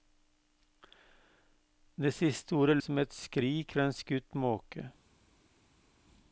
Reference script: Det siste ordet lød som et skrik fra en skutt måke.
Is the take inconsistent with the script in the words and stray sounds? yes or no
yes